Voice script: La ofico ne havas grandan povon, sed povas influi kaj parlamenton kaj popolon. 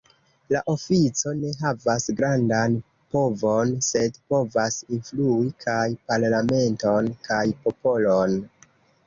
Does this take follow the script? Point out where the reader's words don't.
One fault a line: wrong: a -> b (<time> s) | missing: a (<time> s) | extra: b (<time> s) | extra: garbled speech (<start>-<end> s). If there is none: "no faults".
no faults